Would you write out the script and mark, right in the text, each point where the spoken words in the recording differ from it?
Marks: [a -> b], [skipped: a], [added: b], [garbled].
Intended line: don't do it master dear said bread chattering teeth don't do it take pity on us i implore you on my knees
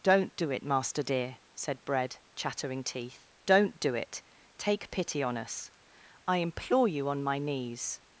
don't do it master dear said bread chattering teeth don't do it take pity on us i implore you on my knees